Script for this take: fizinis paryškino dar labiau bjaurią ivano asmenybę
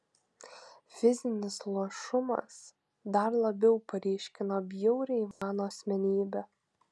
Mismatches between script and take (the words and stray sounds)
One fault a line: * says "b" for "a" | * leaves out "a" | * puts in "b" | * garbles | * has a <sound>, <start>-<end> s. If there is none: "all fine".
* says "luošumas" for "paryškino"
* puts in "paryškino"
* has a dropout, 5.3-5.4 s